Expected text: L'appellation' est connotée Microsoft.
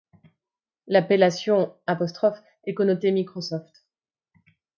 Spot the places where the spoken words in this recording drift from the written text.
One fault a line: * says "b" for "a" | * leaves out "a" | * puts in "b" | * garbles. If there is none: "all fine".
all fine